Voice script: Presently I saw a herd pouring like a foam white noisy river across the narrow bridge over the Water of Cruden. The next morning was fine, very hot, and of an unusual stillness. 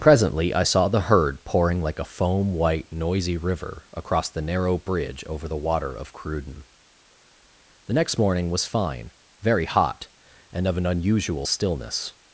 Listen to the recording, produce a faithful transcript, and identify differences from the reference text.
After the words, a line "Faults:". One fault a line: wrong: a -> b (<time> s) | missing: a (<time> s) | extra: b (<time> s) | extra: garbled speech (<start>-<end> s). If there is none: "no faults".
Presently I saw the herd pouring like a foam white noisy river across the narrow bridge over the Water of Cruden. The next morning was fine, very hot, and of an unusual stillness.
Faults:
wrong: a -> the (0.9 s)